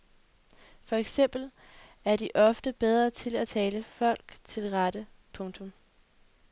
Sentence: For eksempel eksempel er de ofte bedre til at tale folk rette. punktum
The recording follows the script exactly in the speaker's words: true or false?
false